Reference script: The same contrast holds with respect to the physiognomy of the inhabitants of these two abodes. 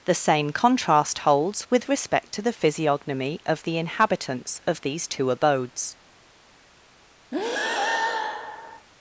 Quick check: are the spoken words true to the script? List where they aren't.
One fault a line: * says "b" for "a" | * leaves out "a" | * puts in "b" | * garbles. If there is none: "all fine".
all fine